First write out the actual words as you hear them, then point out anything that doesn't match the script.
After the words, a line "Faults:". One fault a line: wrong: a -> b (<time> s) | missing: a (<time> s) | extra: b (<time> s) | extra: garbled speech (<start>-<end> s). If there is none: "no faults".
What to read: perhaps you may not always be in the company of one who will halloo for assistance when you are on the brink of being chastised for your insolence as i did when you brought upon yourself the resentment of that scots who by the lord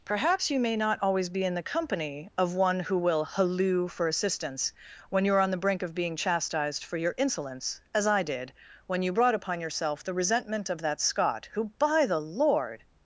perhaps you may not always be in the company of one who will halloo for assistance when you are on the brink of being chastised for your insolence as i did when you brought upon yourself the resentment of that scot who by the lord
Faults:
wrong: scots -> scot (11.0 s)